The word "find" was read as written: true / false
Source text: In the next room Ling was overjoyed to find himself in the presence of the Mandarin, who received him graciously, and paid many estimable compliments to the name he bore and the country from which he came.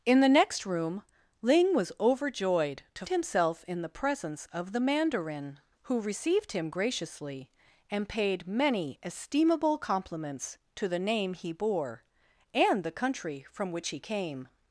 false